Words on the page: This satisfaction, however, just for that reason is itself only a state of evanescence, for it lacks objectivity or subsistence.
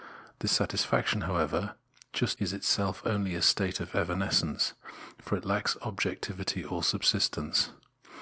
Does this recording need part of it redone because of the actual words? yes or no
yes